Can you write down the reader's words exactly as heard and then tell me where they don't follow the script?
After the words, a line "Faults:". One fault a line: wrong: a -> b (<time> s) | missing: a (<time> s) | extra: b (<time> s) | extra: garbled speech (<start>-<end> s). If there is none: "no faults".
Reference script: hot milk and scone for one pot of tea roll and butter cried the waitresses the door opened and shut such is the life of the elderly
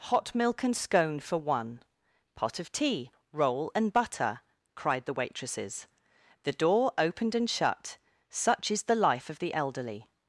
hot milk and scone for one pot of tea roll and butter cried the waitresses the door opened and shut such is the life of the elderly
Faults:
no faults